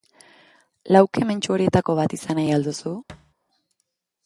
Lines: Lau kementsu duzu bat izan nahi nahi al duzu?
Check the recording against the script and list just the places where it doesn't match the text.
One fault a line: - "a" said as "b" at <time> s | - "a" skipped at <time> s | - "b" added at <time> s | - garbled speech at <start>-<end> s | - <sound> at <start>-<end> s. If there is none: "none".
- "duzu" said as "horietako" at 1.6 s
- "nahi" skipped at 2.6 s
- thud at 3.1-3.3 s